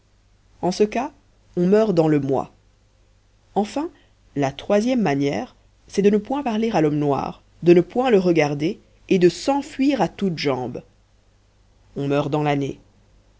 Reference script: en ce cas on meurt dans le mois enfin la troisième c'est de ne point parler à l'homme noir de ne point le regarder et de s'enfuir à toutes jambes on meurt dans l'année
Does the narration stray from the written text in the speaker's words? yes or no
yes